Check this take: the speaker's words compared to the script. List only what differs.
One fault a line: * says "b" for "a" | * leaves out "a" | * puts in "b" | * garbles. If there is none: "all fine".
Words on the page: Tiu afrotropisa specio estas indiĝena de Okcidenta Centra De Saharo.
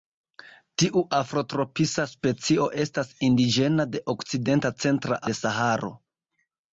all fine